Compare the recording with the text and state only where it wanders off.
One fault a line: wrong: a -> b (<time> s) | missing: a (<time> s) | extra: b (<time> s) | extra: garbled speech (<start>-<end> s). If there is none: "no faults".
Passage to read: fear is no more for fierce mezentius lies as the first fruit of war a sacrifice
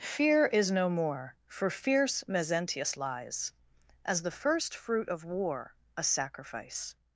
no faults